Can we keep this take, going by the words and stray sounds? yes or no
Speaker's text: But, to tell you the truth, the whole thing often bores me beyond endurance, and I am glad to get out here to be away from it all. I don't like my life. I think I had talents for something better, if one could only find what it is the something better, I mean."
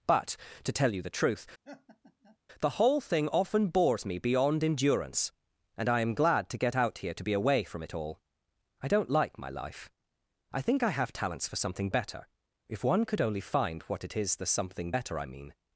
no